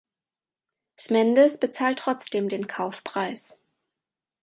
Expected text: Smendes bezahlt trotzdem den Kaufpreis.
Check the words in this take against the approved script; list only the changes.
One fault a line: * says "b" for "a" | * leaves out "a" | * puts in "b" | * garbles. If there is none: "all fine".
all fine